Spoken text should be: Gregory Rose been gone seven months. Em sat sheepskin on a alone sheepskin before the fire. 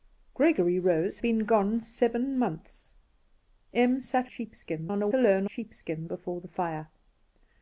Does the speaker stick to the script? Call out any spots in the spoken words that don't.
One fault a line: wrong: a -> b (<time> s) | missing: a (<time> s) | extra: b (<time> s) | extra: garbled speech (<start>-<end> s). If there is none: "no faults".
no faults